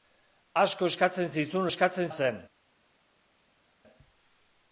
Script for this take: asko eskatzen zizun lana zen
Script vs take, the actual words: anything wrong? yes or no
yes